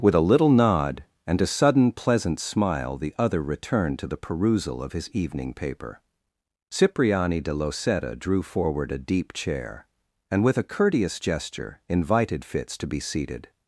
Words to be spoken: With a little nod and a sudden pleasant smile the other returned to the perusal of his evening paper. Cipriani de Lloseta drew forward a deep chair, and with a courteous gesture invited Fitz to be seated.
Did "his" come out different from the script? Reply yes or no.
no